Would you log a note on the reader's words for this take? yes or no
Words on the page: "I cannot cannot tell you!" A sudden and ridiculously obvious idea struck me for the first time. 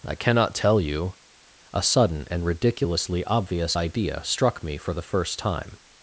yes